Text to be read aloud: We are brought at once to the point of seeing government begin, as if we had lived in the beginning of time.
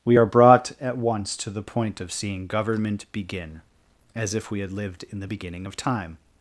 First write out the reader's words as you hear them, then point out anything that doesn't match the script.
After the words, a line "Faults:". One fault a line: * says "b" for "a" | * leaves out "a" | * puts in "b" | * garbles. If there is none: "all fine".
We are brought at once to the point of seeing government begin, as if we had lived in the beginning of time.
Faults:
all fine